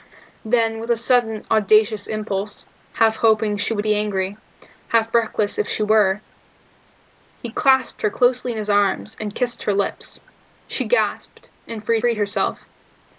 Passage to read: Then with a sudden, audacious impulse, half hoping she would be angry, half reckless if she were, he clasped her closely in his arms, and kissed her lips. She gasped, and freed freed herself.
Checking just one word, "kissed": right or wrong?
right